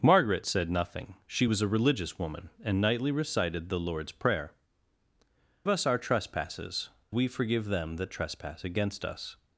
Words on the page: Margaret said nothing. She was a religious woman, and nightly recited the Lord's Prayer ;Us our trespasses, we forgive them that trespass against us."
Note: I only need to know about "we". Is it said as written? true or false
true